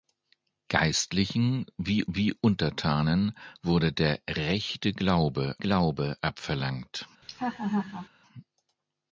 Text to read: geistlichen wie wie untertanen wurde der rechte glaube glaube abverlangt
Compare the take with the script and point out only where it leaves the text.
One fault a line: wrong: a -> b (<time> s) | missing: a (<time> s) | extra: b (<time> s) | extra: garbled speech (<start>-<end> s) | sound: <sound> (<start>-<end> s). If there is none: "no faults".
sound: laugh (7.2-8.1 s)